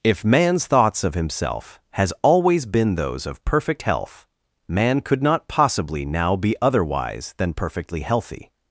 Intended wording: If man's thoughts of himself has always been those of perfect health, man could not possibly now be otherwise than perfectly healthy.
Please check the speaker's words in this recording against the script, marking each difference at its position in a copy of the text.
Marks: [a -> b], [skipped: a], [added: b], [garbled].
If man's thoughts of himself has always been those of perfect health, man could not possibly now be otherwise than perfectly healthy.